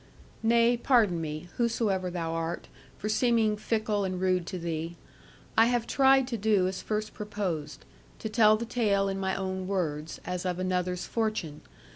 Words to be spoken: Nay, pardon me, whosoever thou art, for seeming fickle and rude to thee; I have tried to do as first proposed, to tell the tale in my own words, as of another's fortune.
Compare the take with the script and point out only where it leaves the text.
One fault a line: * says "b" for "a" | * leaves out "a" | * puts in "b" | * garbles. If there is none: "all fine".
all fine